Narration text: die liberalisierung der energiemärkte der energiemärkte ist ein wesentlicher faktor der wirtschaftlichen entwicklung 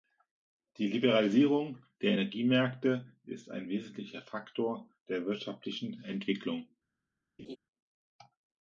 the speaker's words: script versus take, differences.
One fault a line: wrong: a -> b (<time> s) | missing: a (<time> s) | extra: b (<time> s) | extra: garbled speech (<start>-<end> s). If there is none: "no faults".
missing: der energiemärkte (3.2 s)